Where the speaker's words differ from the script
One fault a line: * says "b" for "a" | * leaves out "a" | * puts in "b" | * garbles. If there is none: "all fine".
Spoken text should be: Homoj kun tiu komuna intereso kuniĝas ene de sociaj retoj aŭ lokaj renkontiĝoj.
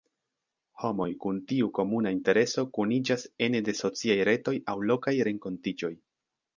all fine